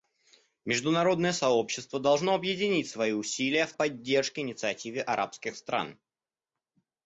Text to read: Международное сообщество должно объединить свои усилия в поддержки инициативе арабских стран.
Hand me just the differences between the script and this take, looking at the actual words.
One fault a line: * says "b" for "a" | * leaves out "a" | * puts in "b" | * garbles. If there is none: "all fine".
all fine